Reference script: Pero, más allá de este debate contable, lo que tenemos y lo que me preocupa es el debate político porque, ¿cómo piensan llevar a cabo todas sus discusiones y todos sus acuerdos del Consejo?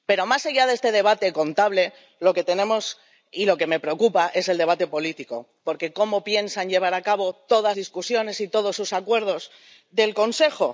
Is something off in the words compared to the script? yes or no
yes